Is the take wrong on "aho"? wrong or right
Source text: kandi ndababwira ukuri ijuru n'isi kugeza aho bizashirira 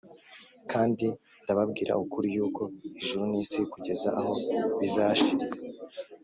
right